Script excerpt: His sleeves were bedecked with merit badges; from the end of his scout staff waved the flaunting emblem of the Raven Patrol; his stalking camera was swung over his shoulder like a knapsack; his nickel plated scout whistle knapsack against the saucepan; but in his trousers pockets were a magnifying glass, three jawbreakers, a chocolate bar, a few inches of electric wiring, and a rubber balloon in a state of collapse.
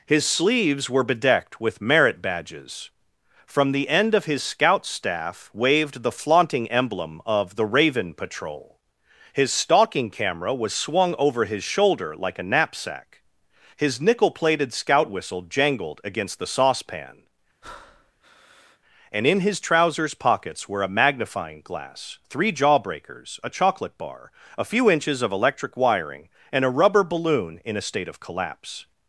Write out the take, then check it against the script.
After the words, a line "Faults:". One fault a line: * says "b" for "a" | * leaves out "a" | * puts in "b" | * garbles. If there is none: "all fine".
His sleeves were bedecked with merit badges; from the end of his scout staff waved the flaunting emblem of the Raven Patrol; his stalking camera was swung over his shoulder like a knapsack; his nickel plated scout whistle jangled against the saucepan; and in his trousers pockets were a magnifying glass, three jawbreakers, a chocolate bar, a few inches of electric wiring, and a rubber balloon in a state of collapse.
Faults:
* says "jangled" for "knapsack"
* says "and" for "but"